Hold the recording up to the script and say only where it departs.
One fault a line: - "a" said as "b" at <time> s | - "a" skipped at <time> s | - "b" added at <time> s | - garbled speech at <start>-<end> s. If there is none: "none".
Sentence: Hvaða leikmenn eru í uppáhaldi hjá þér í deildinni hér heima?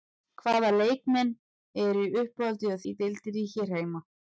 - "þér" skipped at 2.8 s